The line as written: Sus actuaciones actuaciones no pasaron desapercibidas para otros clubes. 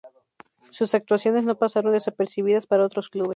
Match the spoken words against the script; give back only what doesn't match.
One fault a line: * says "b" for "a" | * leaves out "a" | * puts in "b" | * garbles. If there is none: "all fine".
* leaves out "actuaciones"